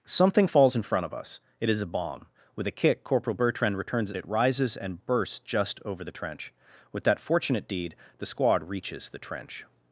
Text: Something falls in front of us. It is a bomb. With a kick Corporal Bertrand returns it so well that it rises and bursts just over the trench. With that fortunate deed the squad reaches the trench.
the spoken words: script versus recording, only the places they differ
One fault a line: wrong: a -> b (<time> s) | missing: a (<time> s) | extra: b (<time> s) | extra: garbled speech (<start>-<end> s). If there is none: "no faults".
missing: so well that (4.2 s)